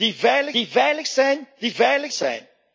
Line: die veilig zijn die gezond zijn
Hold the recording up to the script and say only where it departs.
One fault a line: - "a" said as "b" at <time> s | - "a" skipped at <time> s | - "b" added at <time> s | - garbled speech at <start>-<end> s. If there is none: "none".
- "die veilig" added at 0.5 s
- "gezond" said as "veilig" at 1.7 s